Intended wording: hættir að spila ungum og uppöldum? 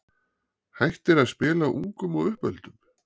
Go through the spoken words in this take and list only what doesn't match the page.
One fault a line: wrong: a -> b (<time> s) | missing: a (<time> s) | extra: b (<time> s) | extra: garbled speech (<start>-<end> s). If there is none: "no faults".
no faults